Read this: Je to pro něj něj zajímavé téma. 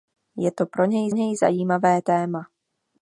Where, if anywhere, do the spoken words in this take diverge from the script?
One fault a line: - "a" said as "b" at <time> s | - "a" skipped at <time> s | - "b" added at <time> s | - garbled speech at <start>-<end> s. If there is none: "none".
none